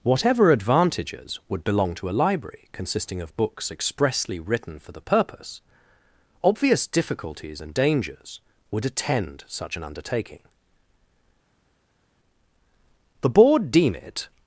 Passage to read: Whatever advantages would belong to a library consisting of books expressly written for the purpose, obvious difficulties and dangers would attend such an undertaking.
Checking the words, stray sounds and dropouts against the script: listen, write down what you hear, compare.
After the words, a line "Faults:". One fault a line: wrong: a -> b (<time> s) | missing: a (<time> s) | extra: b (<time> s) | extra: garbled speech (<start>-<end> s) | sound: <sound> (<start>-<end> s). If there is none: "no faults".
Whatever advantages would belong to a library consisting of books expressly written for the purpose, obvious difficulties and dangers would attend such an undertaking. The Board deem it
Faults:
extra: The Board deem it (13.2 s)